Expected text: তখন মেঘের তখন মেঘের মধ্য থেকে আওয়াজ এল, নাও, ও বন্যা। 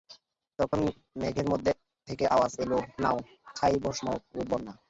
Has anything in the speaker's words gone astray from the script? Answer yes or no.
yes